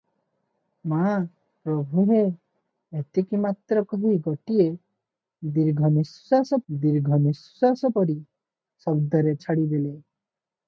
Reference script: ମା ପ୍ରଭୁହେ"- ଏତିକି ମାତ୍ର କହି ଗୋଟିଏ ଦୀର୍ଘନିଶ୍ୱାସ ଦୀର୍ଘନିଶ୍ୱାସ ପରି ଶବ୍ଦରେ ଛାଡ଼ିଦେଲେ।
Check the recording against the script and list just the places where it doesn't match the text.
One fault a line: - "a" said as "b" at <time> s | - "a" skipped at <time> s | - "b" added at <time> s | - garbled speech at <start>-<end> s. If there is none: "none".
none